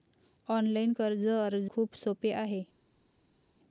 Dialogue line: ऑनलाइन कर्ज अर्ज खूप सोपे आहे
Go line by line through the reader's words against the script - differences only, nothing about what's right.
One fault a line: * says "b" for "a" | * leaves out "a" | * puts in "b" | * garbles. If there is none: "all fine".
all fine